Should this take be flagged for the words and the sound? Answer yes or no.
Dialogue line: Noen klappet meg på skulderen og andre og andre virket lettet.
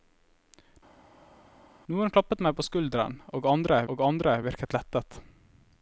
no